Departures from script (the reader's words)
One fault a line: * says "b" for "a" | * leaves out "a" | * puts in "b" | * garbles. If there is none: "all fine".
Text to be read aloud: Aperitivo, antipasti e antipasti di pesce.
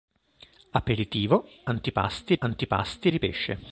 all fine